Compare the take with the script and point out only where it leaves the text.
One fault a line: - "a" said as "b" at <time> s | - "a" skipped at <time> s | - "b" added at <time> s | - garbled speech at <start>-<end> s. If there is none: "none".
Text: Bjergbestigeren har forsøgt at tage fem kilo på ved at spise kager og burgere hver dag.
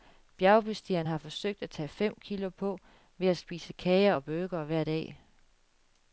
none